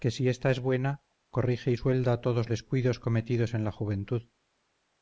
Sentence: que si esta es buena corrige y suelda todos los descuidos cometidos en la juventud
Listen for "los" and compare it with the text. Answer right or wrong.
wrong